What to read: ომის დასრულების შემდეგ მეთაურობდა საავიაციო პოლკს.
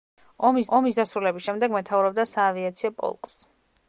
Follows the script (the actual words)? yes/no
no